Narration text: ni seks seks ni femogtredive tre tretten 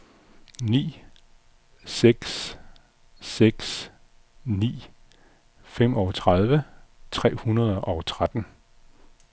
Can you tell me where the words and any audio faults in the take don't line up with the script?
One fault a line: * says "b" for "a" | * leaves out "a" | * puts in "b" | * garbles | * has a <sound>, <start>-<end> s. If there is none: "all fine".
* puts in "hundrede og"